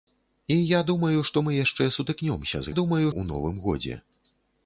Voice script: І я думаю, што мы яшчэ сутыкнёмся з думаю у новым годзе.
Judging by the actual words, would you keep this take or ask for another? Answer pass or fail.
pass